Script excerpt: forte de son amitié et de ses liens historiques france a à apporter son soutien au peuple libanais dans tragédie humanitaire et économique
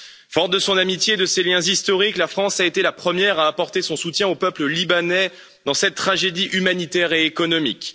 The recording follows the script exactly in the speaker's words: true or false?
false